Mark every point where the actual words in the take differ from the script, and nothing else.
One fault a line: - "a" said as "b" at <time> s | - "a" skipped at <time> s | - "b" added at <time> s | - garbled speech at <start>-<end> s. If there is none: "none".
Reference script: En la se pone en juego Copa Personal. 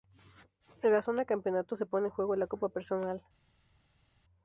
- "zona campeonato" added at 1.0 s
- "la" added at 2.4 s